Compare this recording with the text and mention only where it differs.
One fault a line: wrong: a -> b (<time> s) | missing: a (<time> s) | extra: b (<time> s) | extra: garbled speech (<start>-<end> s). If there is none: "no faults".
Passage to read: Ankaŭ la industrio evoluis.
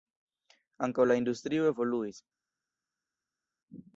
no faults